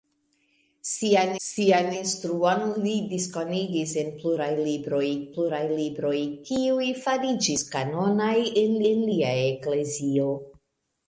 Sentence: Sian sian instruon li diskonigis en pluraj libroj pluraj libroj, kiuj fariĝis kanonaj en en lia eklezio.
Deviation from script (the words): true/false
false